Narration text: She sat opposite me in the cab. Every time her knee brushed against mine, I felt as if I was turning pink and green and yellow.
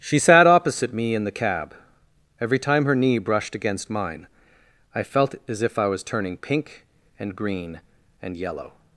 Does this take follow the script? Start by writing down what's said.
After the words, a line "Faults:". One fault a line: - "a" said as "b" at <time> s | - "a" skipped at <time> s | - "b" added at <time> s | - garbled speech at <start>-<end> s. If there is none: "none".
She sat opposite me in the cab. Every time her knee brushed against mine, I felt as if I was turning pink and green and yellow.
Faults:
none